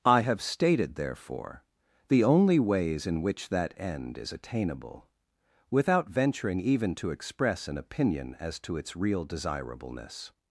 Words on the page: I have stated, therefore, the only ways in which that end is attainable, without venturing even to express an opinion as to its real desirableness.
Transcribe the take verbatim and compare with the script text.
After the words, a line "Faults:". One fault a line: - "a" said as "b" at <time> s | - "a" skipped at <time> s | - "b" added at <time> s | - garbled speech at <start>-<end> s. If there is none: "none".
I have stated, therefore, the only ways in which that end is attainable, without venturing even to express an opinion as to its real desirableness.
Faults:
none